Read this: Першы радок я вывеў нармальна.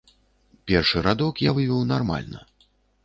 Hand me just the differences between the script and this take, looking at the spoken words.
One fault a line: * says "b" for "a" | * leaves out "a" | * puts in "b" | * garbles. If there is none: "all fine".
all fine